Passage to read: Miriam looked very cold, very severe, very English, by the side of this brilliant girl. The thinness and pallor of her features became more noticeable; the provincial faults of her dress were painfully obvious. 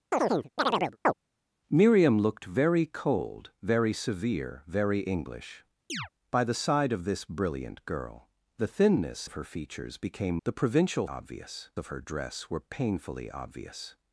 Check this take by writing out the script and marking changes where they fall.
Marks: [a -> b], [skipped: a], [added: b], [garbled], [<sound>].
[chirp] Miriam looked very cold, very severe, very English, [chirp] by the side of this brilliant girl. The thinness [skipped: and pallor] of her features became [skipped: more noticeable;] the provincial [faults -> obvious] of her dress were painfully obvious.